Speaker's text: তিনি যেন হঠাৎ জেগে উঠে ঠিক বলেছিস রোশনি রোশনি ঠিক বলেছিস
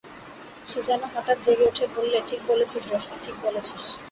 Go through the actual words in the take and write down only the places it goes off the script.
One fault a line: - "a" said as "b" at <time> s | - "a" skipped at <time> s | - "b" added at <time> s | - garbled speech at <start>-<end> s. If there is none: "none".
- "তিনি" said as "সে" at 0.7 s
- "বললে" added at 2.0 s
- "রোশনি" skipped at 3.2 s